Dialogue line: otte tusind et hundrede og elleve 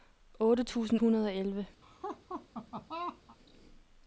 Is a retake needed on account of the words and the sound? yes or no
yes